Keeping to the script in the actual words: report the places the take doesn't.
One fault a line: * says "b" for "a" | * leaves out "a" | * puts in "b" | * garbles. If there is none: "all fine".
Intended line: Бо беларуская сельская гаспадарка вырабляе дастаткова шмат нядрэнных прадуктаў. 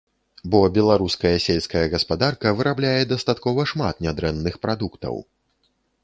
all fine